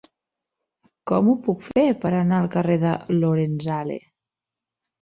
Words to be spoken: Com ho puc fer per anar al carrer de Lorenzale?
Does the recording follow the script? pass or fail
pass